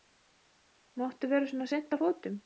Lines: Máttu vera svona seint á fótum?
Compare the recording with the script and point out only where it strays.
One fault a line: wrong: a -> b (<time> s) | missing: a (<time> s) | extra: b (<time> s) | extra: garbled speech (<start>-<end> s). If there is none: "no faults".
no faults